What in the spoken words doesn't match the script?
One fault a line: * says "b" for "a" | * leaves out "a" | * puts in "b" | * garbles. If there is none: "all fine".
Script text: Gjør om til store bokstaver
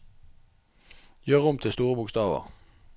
all fine